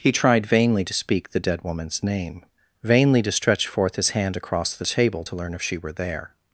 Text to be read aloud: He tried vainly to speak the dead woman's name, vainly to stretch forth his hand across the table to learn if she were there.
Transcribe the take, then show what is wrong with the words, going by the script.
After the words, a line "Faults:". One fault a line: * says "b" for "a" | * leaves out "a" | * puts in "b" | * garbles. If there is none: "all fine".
He tried vainly to speak the dead woman's name, vainly to stretch forth his hand across the table to learn if she were there.
Faults:
all fine